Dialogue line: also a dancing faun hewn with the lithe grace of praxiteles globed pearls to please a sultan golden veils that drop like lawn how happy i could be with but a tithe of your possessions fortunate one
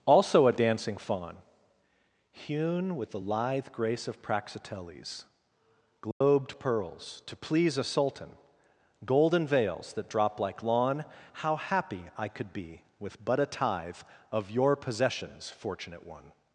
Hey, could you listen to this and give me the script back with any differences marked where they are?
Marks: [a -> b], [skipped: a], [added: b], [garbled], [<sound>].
also a dancing faun hewn with the lithe grace of praxiteles globed [dropout] pearls to please a sultan golden veils that drop like lawn how happy i could be with but a tithe of your possessions fortunate one